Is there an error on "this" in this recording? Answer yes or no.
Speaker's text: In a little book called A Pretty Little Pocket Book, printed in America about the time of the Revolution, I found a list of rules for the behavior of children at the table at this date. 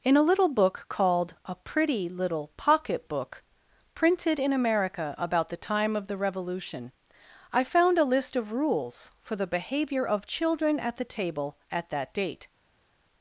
yes